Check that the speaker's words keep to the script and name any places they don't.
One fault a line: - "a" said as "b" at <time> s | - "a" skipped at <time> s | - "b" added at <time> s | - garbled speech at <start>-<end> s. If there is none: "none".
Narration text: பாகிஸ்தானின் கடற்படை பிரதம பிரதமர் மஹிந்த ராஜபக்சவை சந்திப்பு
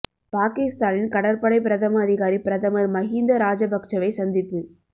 - "அதிகாரி" added at 2.0 s